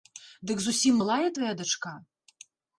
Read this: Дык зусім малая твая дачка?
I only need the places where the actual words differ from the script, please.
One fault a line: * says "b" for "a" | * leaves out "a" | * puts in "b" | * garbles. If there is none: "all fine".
all fine